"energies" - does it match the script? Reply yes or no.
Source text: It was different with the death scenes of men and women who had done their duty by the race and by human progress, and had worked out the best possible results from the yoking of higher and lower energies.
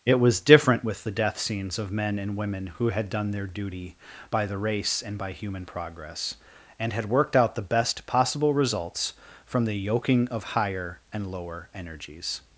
yes